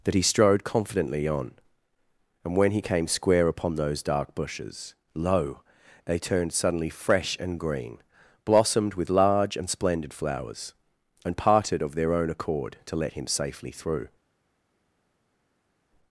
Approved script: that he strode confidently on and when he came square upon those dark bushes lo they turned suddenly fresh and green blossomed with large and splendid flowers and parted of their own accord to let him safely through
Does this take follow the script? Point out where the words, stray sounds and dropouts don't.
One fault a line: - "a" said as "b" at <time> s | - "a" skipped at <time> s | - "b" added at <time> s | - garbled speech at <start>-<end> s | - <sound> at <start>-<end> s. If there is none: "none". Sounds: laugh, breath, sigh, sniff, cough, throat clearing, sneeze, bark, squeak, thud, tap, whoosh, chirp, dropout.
none